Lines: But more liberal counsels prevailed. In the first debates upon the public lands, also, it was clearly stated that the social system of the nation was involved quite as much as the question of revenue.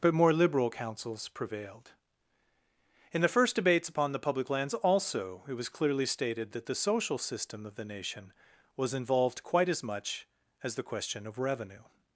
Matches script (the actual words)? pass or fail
pass